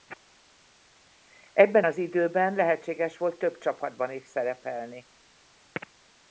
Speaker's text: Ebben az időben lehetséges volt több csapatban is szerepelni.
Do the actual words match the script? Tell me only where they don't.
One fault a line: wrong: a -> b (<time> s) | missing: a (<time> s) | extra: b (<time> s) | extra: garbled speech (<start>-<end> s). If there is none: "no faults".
no faults